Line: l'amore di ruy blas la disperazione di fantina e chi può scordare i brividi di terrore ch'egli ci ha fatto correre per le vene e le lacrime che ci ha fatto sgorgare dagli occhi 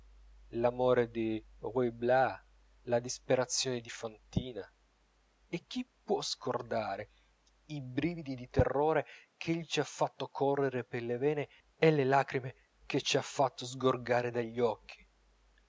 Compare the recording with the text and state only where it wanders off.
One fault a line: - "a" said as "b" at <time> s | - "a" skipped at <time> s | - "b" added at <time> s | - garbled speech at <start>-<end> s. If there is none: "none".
none